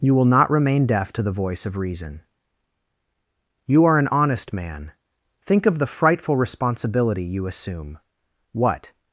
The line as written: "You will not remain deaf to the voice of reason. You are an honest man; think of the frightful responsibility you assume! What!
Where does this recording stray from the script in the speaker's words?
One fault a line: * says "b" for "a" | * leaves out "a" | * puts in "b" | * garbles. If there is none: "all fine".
all fine